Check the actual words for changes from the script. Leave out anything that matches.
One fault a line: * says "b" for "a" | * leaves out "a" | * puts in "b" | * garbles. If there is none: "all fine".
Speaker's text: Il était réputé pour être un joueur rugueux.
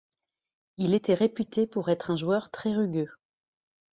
* puts in "très"